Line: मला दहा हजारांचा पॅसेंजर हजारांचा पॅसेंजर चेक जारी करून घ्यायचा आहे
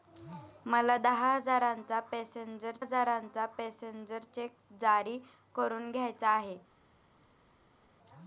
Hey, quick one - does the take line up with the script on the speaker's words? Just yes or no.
yes